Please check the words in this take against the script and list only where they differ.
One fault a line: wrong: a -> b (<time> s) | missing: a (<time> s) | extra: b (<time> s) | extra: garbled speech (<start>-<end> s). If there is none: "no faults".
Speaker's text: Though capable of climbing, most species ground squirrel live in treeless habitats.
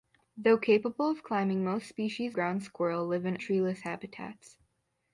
no faults